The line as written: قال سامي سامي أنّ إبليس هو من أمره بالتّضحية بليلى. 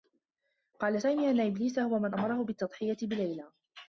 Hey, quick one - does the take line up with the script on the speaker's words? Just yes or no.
no